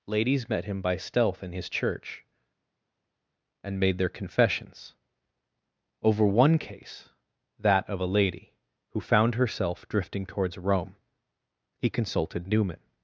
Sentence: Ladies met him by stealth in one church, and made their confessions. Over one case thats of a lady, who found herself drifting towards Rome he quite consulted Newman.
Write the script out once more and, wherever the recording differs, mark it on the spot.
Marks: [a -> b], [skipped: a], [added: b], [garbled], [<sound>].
Ladies met him by stealth in [one -> his] church, and made their confessions. Over one case [thats -> that] of a lady, who found herself drifting towards Rome he [skipped: quite] consulted Newman.